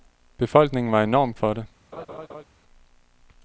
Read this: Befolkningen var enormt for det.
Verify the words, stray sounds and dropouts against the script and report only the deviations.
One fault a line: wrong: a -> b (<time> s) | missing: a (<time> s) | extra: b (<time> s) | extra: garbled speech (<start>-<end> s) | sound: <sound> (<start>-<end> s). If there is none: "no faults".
sound: laugh (1.9-2.4 s)